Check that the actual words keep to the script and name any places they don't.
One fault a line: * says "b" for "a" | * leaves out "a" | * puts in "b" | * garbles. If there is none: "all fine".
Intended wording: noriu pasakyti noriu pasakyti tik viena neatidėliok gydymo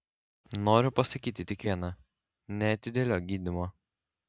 * leaves out "noriu pasakyti"